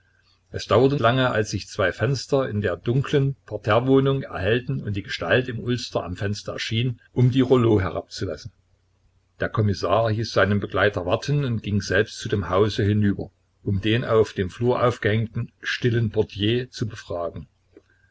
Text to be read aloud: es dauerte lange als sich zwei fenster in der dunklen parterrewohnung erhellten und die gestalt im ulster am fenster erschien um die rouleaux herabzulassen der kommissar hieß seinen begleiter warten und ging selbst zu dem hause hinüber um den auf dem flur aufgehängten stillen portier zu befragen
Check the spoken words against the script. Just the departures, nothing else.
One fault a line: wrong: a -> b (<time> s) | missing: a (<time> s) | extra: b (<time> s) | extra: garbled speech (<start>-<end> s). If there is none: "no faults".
no faults